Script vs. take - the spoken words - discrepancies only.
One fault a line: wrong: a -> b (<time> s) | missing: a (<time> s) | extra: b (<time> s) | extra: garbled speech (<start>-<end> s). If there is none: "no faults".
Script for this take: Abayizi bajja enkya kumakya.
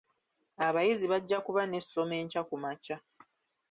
extra: kuba n'essomo (1.4 s)